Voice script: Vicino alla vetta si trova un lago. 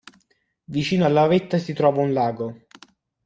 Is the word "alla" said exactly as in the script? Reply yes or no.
yes